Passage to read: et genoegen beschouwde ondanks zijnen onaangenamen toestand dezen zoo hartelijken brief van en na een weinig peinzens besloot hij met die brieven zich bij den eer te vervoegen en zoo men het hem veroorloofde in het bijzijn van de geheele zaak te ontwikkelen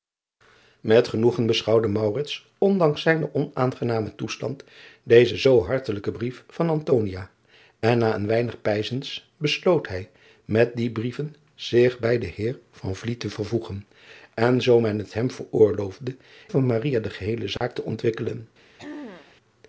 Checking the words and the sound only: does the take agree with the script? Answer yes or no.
no